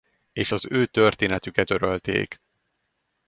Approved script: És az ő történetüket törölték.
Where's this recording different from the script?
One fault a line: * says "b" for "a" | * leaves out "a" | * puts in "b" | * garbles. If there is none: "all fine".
all fine